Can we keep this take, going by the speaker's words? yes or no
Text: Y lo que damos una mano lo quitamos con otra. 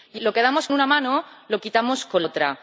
yes